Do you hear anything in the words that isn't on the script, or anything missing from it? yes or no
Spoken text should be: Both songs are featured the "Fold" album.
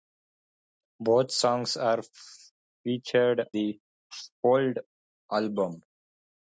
no